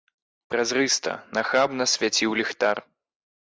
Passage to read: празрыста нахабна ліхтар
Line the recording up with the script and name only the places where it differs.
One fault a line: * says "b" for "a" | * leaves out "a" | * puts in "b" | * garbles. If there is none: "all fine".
* puts in "свяціў"